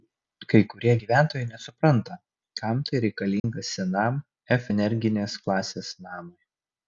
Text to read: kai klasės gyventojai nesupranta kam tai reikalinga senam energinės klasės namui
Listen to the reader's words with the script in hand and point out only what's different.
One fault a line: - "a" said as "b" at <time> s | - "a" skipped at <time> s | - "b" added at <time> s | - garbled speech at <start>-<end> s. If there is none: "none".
- "klasės" said as "kurie" at 0.7 s
- "f" added at 4.6 s